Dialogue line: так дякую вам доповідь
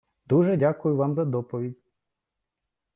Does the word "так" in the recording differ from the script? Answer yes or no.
yes